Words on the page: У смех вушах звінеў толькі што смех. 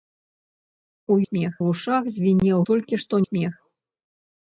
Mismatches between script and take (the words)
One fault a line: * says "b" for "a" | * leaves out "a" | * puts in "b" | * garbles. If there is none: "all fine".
all fine